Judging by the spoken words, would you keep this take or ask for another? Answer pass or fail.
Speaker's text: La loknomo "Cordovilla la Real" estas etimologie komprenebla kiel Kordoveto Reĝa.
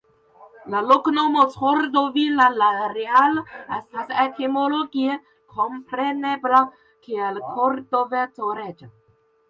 pass